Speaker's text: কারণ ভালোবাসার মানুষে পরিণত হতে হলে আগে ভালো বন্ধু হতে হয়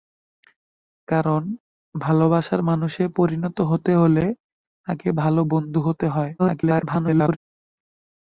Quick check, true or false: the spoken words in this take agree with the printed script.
false